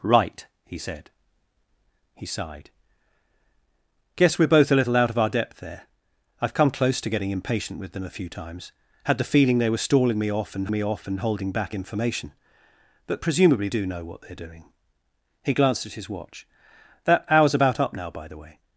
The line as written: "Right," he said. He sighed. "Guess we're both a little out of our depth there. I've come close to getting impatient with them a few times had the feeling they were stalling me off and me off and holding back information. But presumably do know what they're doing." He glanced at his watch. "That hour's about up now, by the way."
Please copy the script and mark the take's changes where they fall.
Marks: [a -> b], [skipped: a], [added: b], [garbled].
"Right," he said. He sighed. "Guess we're both a little out of our depth there. I've come close to getting impatient with them a few times had the feeling they were stalling me off and me off and holding back information. But presumably do know what they're doing." He glanced at his watch. "That hour's about up now, by the way."